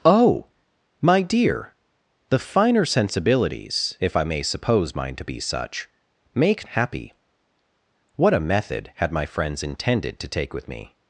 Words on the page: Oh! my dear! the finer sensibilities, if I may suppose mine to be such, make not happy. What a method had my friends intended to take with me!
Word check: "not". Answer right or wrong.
wrong